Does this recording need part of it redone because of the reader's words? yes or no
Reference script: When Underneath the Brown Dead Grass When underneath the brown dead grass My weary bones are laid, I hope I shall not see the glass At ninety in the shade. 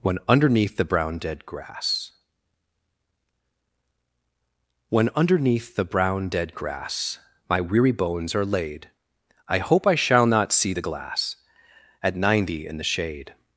no